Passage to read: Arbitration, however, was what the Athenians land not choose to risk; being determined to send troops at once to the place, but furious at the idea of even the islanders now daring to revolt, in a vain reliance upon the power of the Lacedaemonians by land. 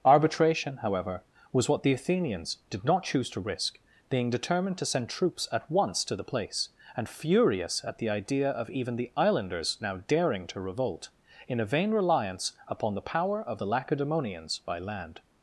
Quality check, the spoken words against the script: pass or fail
fail